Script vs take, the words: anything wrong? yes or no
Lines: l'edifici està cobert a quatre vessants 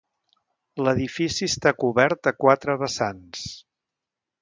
no